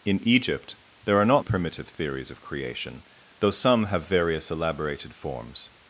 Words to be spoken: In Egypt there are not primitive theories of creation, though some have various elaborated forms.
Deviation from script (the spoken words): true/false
false